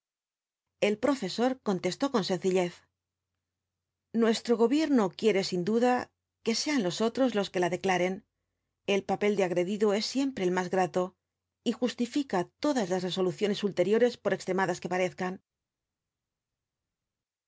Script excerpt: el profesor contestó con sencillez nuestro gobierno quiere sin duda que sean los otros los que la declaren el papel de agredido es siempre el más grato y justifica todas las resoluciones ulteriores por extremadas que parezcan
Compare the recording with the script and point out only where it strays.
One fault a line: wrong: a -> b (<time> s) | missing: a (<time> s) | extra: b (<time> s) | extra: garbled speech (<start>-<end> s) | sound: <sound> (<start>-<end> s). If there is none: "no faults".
no faults